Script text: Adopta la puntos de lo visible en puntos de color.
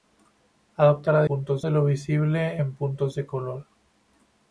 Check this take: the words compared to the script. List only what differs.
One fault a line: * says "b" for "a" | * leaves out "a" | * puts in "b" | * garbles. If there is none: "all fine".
all fine